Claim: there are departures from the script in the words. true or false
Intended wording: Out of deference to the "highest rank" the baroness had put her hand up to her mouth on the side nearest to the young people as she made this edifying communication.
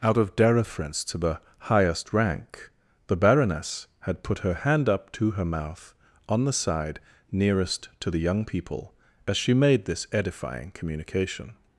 false